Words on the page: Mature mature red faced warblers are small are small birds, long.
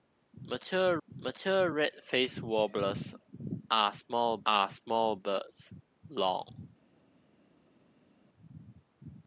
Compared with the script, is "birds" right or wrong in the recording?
right